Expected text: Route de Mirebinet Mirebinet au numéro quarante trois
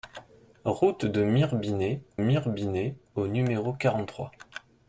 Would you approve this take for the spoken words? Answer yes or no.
yes